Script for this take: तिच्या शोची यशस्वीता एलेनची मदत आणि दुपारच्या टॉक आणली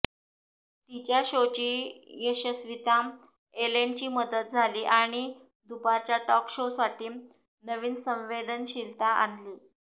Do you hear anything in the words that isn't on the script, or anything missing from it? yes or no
yes